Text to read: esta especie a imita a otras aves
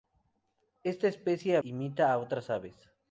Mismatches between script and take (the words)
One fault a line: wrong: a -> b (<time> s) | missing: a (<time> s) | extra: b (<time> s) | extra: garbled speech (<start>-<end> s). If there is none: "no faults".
no faults